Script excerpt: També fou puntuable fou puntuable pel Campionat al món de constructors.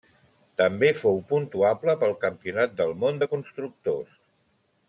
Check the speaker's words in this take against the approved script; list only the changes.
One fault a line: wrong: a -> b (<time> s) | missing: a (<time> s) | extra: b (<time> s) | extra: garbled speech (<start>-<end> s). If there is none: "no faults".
missing: fou puntuable (1.9 s)
wrong: al -> del (2.8 s)